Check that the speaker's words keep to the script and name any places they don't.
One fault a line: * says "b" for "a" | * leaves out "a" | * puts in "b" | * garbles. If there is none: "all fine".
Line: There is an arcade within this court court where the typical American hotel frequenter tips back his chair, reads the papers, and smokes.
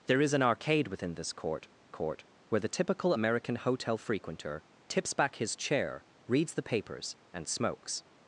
all fine